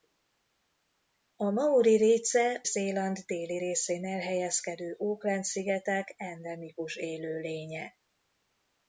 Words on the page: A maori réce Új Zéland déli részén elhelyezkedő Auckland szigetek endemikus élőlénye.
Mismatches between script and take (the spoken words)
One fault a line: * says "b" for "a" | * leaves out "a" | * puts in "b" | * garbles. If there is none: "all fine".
* leaves out "Új"